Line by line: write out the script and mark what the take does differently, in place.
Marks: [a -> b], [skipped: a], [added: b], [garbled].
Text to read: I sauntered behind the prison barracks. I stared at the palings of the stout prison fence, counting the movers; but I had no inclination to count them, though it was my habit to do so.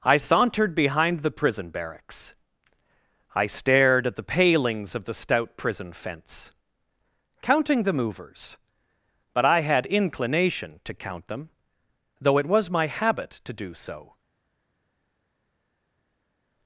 I sauntered behind the prison barracks. I stared at the palings of the stout prison fence, counting the movers; but I had [skipped: no] inclination to count them, though it was my habit to do so.